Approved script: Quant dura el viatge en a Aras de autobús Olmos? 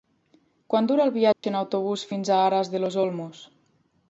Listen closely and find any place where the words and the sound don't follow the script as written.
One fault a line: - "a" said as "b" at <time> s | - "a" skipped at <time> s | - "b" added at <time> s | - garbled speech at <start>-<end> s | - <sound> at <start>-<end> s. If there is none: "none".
- dropout at 1.3-1.4 s
- "autobús fins" added at 1.6 s
- "autobús" said as "los" at 2.8 s